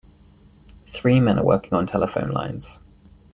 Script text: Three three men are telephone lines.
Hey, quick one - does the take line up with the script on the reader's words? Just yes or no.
no